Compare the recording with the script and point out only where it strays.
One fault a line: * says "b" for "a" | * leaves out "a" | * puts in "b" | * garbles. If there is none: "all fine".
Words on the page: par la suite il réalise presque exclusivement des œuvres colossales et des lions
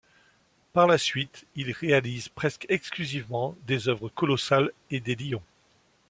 all fine